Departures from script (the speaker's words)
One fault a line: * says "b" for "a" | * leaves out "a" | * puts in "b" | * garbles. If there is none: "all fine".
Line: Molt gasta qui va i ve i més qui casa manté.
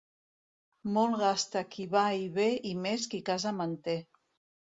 all fine